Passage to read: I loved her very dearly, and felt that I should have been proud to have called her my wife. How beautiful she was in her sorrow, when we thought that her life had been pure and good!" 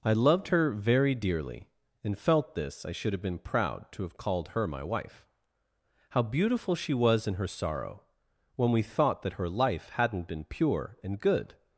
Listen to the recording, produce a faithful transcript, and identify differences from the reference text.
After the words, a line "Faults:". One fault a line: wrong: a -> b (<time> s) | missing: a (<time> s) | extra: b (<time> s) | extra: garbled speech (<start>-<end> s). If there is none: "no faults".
I loved her very dearly, and felt this I should have been proud to have called her my wife. How beautiful she was in her sorrow, when we thought that her life hadn't been pure and good!"
Faults:
wrong: that -> this (2.5 s)
wrong: had -> hadn't (9.9 s)